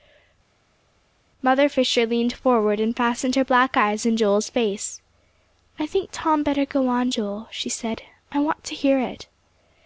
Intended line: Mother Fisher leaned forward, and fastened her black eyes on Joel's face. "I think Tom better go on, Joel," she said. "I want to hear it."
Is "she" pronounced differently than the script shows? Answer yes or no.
no